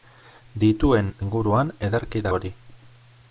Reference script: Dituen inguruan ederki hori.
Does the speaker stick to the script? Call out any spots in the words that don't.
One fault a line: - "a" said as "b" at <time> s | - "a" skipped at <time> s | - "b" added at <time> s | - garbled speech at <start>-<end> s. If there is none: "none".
none